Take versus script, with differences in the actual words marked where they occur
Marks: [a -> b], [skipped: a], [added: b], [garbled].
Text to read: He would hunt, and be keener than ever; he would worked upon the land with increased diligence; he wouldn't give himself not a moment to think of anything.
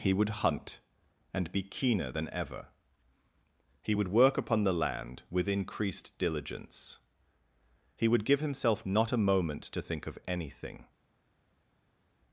He would hunt, and be keener than ever; he would [worked -> work] upon the land with increased diligence; he [wouldn't -> would] give himself not a moment to think of anything.